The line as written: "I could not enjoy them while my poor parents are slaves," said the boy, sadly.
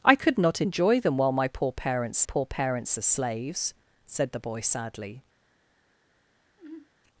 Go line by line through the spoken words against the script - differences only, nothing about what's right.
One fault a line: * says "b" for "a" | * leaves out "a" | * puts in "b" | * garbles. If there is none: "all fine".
* puts in "poor parents"